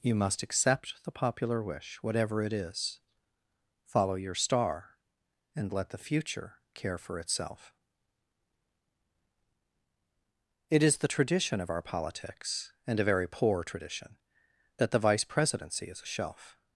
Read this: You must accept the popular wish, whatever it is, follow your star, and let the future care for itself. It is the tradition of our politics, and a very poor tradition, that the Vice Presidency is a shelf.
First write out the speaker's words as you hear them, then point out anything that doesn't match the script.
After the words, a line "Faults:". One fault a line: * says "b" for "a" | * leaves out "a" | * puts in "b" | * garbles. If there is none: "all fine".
You must accept the popular wish, whatever it is, follow your star, and let the future care for itself. It is the tradition of our politics, and a very poor tradition, that the Vice Presidency is a shelf.
Faults:
all fine